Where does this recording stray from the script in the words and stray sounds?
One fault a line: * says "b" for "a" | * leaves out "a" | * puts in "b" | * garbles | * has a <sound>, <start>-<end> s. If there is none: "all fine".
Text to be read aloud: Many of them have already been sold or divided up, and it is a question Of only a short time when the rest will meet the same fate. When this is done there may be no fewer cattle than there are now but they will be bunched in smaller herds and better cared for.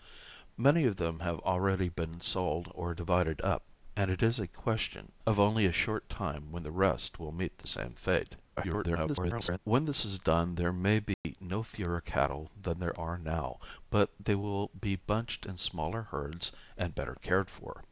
* garbles
* has a dropout, 11.1-11.2 s